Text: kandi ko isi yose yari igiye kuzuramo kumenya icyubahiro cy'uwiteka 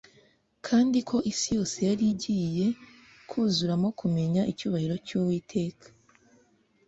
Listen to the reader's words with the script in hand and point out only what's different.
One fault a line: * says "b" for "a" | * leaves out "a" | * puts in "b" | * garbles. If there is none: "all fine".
all fine